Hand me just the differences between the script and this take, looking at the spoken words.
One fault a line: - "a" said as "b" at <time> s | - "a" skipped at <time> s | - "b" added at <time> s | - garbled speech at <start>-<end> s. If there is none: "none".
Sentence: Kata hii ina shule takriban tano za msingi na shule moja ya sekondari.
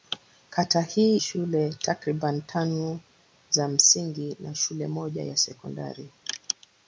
- "ina" skipped at 1.2 s